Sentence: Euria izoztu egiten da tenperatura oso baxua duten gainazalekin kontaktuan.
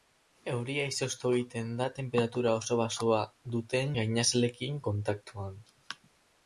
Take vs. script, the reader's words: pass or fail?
pass